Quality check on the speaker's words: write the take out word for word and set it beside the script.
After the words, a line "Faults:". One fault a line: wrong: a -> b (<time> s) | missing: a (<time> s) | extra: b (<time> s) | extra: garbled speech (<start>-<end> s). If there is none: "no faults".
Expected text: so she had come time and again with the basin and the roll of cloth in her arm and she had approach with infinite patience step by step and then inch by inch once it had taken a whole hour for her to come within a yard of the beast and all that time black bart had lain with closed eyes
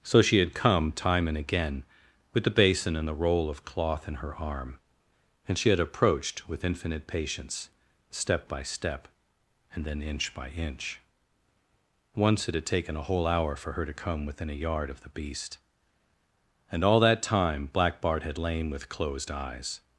so she had come time and again with the basin and the roll of cloth in her arm and she had approached with infinite patience step by step and then inch by inch once it had taken a whole hour for her to come within a yard of the beast and all that time black bart had lain with closed eyes
Faults:
wrong: approach -> approached (5.8 s)